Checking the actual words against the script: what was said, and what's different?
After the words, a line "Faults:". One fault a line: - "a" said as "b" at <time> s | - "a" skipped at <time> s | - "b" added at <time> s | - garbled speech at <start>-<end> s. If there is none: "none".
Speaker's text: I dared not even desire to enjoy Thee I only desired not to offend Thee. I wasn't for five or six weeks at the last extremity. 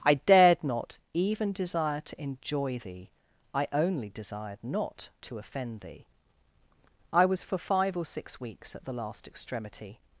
I dared not even desire to enjoy Thee I only desired not to offend Thee. I was for five or six weeks at the last extremity.
Faults:
- "wasn't" said as "was" at 7.2 s